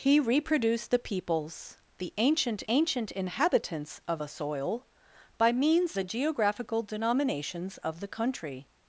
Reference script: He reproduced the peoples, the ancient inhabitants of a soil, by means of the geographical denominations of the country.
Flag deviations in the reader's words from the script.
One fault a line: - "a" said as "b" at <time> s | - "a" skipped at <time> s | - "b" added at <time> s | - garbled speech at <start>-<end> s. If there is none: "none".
- "ancient" added at 2.7 s
- "of" skipped at 6.0 s